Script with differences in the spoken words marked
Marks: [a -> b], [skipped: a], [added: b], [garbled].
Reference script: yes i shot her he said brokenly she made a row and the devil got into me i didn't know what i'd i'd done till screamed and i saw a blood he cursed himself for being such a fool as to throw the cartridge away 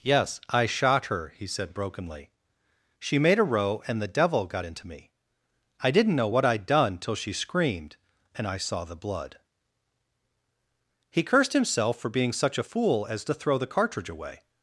yes i shot her he said brokenly she made a row and the devil got into me i didn't know what i'd [skipped: i'd] done till [added: she] screamed and i saw [a -> the] blood he cursed himself for being such a fool as to throw the cartridge away